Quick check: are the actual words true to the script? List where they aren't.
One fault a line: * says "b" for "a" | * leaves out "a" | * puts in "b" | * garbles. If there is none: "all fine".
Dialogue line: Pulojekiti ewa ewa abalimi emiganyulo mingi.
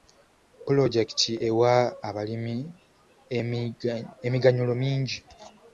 * leaves out "ewa"